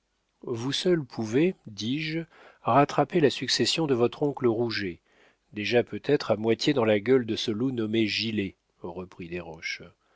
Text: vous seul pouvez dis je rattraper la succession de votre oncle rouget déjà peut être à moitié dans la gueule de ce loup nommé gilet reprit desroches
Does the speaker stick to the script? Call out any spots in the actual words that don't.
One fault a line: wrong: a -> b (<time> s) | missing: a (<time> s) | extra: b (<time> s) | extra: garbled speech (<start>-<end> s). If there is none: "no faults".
no faults